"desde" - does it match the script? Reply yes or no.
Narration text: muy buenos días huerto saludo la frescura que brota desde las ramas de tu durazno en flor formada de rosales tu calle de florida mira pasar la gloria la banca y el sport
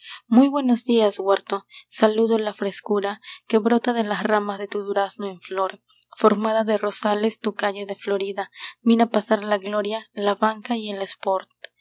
no